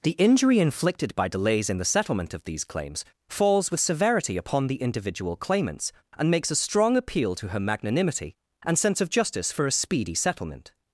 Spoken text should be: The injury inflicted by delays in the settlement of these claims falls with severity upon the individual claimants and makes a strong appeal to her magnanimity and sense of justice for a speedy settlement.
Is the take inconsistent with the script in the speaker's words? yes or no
no